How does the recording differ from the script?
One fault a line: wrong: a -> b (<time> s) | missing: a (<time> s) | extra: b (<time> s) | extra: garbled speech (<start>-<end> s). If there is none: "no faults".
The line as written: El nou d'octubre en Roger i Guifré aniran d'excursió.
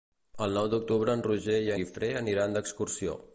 no faults